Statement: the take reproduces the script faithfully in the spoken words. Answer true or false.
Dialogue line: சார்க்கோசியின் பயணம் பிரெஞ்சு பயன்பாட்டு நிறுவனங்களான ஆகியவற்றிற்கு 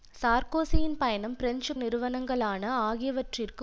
false